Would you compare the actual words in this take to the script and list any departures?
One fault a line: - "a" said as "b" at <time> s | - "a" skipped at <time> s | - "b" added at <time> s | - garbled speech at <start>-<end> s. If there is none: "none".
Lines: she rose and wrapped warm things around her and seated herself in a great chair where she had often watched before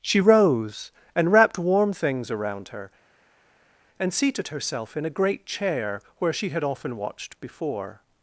none